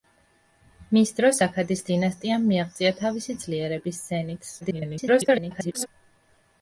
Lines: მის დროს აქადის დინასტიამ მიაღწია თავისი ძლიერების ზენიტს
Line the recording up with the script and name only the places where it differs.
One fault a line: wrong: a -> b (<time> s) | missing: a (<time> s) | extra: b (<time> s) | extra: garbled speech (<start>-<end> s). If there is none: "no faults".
extra: garbled speech (4.6-5.9 s)